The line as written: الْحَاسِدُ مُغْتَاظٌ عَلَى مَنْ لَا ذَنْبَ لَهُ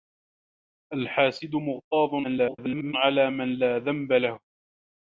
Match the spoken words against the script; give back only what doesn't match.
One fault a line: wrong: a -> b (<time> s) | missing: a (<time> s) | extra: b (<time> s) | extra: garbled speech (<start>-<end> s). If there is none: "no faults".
extra: garbled speech (2.2-2.9 s)